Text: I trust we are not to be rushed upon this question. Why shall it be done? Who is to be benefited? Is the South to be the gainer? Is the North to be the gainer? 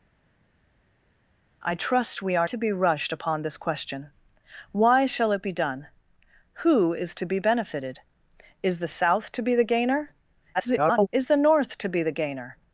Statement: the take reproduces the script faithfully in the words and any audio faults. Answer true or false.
false